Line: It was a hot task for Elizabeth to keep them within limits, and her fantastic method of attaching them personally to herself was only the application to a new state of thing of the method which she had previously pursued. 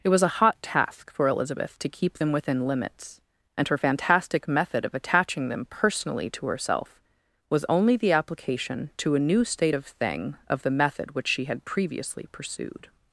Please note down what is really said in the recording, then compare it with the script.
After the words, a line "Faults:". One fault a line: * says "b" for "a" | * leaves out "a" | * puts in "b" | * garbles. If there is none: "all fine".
It was a hot task for Elizabeth to keep them within limits, and her fantastic method of attaching them personally to herself was only the application to a new state of thing of the method which she had previously pursued.
Faults:
all fine